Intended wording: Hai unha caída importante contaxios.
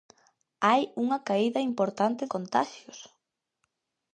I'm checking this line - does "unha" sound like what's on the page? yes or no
yes